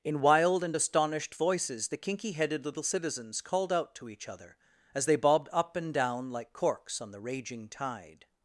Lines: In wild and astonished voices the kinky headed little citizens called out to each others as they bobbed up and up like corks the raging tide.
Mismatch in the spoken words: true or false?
true